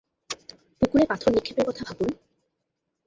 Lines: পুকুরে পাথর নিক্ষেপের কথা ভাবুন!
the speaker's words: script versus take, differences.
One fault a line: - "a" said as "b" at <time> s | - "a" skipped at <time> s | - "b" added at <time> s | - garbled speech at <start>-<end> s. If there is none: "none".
none